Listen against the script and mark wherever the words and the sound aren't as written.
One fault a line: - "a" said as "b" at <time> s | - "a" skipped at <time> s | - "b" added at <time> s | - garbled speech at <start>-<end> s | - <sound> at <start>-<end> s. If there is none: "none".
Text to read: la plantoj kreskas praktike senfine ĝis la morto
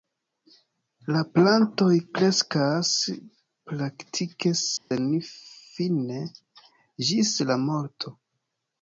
- dropout at 4.8-4.9 s